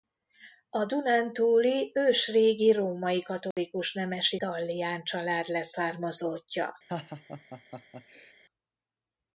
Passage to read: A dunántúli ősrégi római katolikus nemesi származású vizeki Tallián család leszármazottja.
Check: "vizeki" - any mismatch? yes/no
yes